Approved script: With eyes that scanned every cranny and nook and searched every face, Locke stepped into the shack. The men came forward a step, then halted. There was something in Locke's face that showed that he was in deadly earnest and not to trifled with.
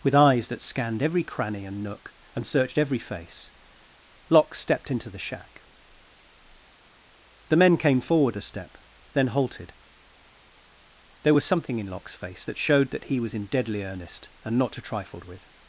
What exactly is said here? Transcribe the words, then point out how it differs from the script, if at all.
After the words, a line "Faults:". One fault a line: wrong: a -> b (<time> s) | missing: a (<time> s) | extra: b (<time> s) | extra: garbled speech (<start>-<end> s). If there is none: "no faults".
With eyes that scanned every cranny and nook and searched every face, Locke stepped into the shack. The men came forward a step, then halted. There was something in Locke's face that showed that he was in deadly earnest and not to trifled with.
Faults:
no faults